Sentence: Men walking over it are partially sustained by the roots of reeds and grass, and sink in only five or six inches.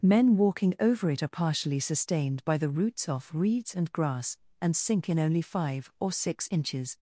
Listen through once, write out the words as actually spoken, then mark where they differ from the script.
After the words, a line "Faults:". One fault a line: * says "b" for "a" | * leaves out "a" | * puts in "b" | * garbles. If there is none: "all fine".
Men walking over it are partially sustained by the roots off reeds and grass, and sink in only five or six inches.
Faults:
* says "off" for "of"